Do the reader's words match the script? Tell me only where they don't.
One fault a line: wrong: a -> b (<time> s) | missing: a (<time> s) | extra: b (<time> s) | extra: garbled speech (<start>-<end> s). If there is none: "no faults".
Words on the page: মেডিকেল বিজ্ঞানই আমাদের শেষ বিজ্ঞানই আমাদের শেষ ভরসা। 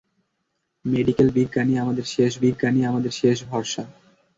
no faults